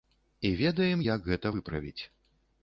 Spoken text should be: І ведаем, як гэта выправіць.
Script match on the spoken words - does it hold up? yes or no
yes